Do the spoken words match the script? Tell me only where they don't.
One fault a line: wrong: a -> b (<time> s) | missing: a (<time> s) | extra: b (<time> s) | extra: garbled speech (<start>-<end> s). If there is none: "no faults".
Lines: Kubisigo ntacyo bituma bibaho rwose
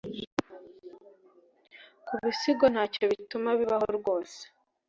no faults